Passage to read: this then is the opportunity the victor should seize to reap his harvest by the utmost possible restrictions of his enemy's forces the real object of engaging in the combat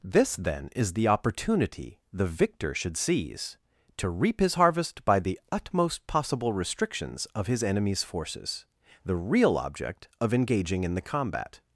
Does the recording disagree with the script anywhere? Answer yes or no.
no